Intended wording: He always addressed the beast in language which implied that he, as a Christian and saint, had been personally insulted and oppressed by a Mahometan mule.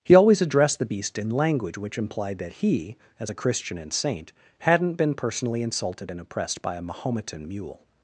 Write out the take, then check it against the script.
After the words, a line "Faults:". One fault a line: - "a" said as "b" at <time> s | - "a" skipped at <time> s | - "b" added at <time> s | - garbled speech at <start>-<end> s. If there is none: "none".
He always addressed the beast in language which implied that he, as a Christian and saint, hadn't been personally insulted and oppressed by a Mahometan mule.
Faults:
- "had" said as "hadn't" at 4.6 s